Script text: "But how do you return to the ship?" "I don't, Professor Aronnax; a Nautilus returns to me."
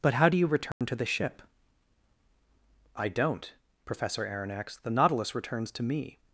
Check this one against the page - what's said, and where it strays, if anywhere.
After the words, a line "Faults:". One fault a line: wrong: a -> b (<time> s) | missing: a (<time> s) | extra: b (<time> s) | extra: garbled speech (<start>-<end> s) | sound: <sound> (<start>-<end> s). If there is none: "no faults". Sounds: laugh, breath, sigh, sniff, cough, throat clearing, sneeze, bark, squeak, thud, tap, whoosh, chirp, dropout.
"But how do you return to the ship?" "I don't, Professor Aronnax; the Nautilus returns to me."
Faults:
sound: dropout (0.7-0.8 s)
wrong: a -> the (4.8 s)